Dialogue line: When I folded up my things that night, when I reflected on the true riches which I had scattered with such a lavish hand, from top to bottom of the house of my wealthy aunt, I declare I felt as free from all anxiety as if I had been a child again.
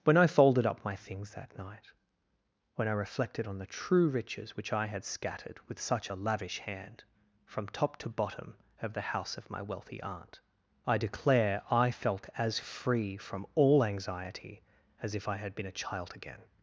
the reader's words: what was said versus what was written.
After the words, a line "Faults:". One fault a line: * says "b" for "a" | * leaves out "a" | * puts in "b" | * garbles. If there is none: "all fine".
When I folded up my things that night, when I reflected on the true riches which I had scattered with such a lavish hand, from top to bottom of the house of my wealthy aunt, I declare I felt as free from all anxiety as if I had been a child again.
Faults:
all fine